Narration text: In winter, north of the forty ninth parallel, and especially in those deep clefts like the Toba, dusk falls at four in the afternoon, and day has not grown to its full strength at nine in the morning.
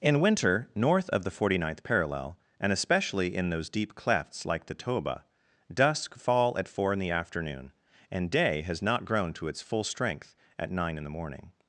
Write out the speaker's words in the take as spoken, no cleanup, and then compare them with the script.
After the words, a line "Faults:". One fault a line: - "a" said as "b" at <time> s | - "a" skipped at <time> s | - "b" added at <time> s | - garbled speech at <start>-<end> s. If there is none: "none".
In winter, north of the forty ninth parallel, and especially in those deep clefts like the Toba, dusk fall at four in the afternoon, and day has not grown to its full strength at nine in the morning.
Faults:
- "falls" said as "fall" at 6.2 s